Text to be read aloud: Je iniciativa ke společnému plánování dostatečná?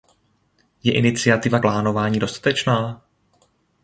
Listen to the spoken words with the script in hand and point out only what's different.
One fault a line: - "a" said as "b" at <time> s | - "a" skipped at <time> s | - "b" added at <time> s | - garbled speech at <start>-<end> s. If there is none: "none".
- "ke společnému" skipped at 1.6 s